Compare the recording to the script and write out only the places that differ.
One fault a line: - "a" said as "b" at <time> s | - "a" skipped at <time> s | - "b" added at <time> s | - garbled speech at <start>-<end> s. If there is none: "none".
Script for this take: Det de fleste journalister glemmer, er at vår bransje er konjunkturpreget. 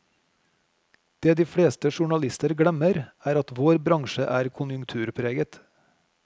none